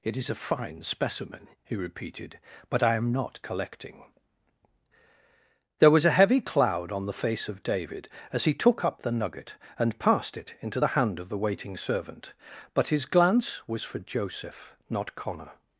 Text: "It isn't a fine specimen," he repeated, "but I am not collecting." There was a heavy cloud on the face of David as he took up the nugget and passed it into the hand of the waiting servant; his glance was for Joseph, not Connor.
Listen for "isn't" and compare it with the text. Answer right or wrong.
wrong